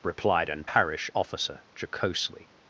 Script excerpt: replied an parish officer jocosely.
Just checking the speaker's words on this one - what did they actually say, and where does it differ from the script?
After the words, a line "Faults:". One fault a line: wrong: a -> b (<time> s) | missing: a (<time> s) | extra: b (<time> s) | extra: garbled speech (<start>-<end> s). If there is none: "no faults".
replied an parish officer jocosely.
Faults:
no faults